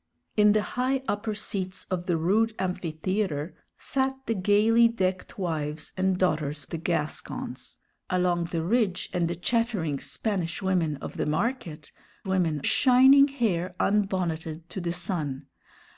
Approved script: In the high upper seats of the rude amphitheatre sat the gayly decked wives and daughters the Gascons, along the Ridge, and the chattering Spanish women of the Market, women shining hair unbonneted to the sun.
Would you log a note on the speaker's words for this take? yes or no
no